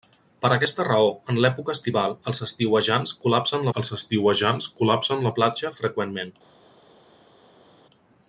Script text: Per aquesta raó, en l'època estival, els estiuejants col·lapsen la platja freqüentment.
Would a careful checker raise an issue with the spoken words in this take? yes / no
yes